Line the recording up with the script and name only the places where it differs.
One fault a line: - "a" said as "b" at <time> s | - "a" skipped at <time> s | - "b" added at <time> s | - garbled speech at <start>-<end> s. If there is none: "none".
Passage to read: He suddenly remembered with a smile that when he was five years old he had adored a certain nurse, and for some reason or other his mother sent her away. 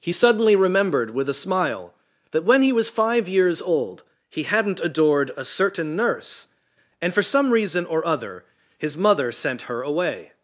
- "had" said as "hadn't" at 4.4 s